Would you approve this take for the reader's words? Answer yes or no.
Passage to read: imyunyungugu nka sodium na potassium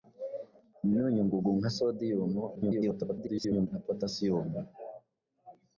no